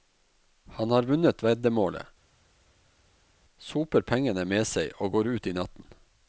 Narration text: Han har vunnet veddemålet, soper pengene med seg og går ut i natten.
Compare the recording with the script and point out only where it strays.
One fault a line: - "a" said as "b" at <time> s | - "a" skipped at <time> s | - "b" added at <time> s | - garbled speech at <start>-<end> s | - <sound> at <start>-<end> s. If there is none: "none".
none